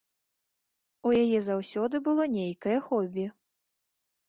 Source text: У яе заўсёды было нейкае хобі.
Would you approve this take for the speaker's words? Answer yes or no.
yes